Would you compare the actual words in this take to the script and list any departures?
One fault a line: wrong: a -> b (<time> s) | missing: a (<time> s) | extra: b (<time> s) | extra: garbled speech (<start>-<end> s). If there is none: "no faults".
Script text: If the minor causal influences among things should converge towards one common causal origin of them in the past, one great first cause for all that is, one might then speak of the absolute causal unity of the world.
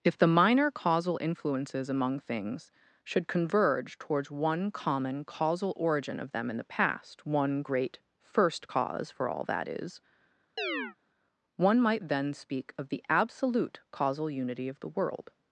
no faults